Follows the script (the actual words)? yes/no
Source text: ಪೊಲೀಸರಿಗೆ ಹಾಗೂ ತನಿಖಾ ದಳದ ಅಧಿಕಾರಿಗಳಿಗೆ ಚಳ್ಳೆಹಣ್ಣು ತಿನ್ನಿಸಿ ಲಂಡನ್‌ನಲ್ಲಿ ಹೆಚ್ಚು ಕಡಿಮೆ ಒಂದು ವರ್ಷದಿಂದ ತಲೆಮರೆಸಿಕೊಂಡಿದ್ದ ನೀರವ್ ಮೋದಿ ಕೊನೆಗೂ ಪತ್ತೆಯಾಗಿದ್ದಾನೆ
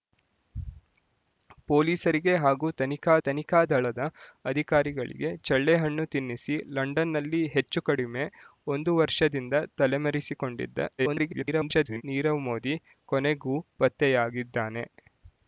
no